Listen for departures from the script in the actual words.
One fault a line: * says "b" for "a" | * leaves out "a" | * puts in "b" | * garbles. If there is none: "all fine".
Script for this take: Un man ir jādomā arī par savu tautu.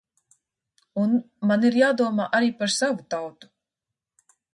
all fine